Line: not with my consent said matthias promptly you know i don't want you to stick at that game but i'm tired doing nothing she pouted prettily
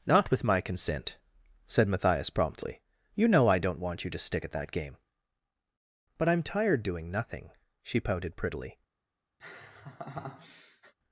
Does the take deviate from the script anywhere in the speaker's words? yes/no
no